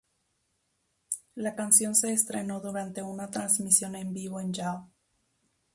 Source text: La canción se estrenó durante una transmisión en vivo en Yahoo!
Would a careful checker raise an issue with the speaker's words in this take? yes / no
no